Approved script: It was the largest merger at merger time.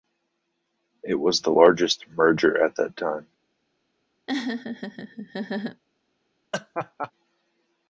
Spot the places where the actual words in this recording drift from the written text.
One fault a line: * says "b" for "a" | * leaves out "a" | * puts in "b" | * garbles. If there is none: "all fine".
* says "that" for "merger"